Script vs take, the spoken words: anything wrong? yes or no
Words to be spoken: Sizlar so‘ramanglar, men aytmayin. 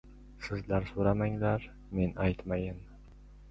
no